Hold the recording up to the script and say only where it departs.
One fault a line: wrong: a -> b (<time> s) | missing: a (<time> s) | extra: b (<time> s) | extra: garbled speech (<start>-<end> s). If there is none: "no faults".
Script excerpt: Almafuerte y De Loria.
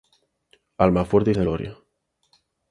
no faults